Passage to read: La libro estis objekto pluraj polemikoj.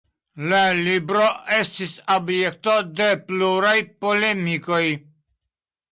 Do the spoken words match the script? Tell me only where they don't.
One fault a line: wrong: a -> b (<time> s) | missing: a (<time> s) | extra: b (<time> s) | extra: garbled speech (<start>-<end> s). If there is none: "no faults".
extra: de (3.0 s)